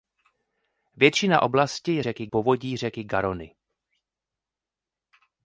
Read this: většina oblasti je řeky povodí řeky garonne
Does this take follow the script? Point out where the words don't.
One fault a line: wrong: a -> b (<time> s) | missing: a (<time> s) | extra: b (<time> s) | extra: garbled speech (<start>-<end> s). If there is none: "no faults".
no faults